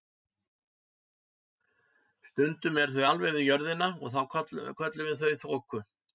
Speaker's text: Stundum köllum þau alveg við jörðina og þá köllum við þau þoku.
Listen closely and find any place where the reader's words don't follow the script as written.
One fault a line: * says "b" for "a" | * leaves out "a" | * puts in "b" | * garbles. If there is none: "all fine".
* says "eru" for "köllum"